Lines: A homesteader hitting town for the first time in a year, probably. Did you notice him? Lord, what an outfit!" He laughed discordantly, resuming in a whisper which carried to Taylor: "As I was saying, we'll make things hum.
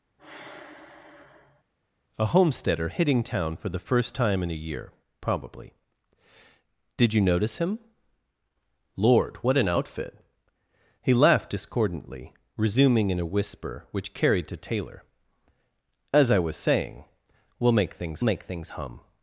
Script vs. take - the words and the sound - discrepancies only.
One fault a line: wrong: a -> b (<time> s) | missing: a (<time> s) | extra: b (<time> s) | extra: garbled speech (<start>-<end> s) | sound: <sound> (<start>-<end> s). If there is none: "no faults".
sound: sigh (0.2-1.6 s)
extra: make things (18.2 s)